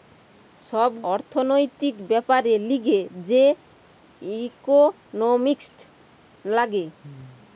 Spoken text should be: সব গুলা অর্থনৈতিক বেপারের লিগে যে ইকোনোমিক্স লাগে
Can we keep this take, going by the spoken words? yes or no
no